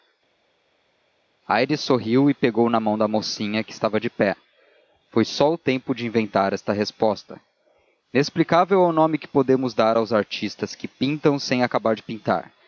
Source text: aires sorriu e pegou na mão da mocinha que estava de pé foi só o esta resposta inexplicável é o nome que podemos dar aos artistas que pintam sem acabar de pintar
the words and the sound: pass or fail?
fail